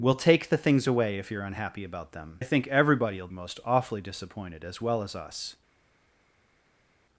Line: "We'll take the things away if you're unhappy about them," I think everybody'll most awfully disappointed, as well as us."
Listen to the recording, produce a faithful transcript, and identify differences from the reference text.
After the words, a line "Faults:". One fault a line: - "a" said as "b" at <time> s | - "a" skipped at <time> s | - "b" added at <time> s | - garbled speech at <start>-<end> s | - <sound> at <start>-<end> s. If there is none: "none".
"We'll take the things away if you're unhappy about them," I think everybody'll most awfully disappointed, as well as us."
Faults:
none